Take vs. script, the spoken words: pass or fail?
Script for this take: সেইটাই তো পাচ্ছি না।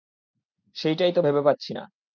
fail